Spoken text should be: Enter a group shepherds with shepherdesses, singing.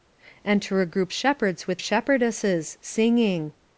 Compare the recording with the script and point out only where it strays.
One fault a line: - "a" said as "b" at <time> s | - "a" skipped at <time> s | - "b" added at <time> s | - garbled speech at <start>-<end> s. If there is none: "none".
none